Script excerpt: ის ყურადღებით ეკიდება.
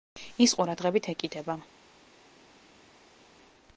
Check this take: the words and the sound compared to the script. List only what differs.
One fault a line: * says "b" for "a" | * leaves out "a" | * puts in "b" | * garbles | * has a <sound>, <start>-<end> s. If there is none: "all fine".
all fine